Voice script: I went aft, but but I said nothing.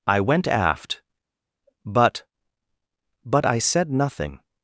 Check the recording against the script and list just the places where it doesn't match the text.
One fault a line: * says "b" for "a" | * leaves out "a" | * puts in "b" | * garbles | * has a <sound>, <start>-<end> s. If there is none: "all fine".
all fine